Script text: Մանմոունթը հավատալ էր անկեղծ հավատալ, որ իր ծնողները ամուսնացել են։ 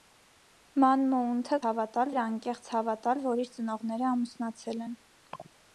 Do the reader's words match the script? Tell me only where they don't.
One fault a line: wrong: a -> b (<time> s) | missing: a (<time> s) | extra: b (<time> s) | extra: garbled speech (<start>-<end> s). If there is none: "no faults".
no faults